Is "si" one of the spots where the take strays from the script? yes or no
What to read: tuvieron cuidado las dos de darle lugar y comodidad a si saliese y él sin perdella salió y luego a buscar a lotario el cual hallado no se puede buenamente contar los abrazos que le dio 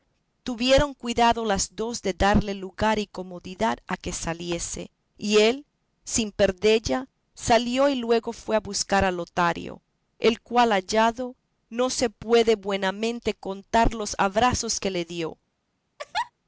yes